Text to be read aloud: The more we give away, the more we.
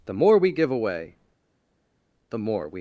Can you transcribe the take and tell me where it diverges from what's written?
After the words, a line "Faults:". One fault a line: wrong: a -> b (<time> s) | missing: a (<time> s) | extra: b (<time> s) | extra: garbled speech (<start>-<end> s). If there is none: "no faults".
The more we give away, the more we.
Faults:
no faults